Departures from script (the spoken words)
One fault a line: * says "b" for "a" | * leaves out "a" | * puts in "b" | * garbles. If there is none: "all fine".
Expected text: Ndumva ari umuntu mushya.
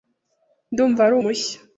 * leaves out "umuntu"